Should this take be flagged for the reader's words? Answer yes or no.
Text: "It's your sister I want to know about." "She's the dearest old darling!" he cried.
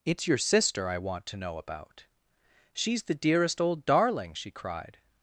yes